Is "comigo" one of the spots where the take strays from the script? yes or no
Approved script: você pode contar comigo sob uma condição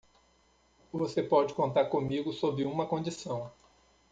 no